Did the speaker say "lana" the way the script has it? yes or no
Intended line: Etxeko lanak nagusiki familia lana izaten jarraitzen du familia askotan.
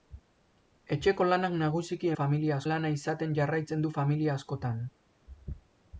yes